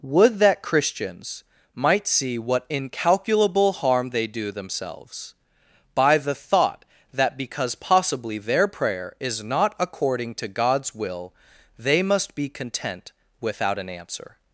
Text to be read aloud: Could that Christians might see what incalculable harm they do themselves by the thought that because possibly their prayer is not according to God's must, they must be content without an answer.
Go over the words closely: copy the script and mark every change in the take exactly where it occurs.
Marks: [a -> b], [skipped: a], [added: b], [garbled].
[Could -> Would] that Christians might see what incalculable harm they do themselves by the thought that because possibly their prayer is not according to God's [must, -> will] they must be content without an answer.